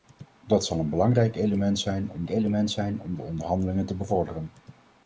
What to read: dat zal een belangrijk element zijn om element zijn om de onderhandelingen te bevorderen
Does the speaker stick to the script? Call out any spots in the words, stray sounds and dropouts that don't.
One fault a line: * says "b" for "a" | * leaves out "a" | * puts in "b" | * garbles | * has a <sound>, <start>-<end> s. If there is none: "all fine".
all fine